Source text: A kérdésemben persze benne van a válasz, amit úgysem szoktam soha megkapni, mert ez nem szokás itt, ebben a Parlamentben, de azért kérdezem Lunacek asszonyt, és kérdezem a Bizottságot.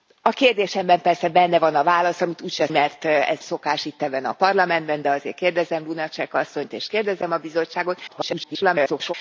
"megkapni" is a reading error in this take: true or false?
true